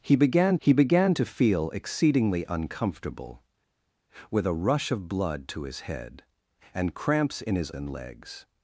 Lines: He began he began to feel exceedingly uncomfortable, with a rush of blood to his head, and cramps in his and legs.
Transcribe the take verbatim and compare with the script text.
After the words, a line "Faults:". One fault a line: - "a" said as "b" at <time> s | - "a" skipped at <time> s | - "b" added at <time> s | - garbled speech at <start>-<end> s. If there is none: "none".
He began he began to feel exceedingly uncomfortable, with a rush of blood to his head, and cramps in his and legs.
Faults:
none